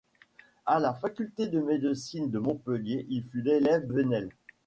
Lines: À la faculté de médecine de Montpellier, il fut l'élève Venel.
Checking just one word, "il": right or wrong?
right